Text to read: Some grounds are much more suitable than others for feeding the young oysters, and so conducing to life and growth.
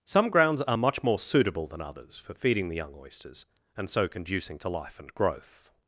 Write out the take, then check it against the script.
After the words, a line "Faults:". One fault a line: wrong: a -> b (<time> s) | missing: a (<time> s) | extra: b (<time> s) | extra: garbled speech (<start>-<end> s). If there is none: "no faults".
Some grounds are much more suitable than others for feeding the young oysters, and so conducing to life and growth.
Faults:
no faults